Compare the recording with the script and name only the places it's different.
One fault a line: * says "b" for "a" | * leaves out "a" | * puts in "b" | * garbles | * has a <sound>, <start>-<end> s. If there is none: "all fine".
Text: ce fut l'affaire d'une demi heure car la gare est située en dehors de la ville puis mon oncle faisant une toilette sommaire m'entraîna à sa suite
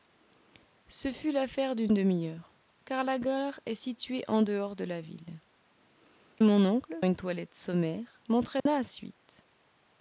* leaves out "puis"
* leaves out "faisant"
* has a dropout, 8.6-8.7 s
* leaves out "sa"